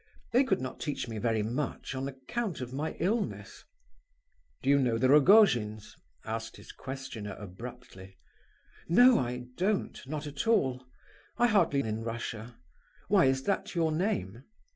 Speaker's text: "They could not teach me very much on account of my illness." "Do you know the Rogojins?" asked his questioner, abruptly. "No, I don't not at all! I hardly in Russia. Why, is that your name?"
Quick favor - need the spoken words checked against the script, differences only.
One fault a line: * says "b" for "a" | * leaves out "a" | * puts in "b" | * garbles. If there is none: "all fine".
all fine